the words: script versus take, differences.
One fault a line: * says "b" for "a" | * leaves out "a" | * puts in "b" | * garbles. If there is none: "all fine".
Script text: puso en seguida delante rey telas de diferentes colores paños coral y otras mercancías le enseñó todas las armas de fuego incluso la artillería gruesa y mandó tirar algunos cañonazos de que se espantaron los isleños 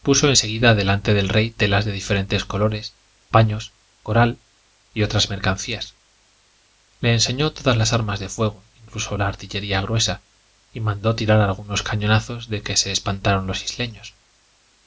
* puts in "del"